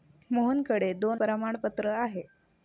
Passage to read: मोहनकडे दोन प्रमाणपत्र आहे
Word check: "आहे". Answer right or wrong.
right